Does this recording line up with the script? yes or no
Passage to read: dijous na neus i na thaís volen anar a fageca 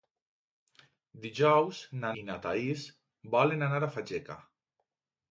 no